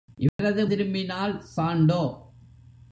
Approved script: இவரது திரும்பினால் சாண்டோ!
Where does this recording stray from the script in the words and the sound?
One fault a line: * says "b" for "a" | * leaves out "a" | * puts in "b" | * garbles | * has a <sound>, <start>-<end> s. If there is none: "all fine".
* has a dropout, 0.3-0.4 s